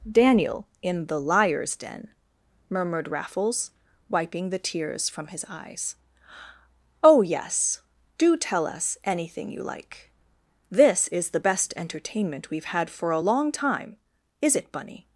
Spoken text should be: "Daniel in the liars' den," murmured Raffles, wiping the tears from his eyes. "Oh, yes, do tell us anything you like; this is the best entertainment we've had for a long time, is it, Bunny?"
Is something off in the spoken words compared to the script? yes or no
no